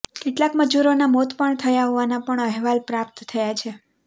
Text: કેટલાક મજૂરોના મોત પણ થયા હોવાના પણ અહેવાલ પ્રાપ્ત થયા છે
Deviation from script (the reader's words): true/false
false